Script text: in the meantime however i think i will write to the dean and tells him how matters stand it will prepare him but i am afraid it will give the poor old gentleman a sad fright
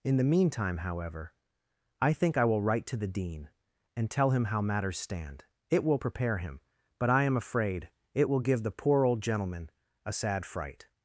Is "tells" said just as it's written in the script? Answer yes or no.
no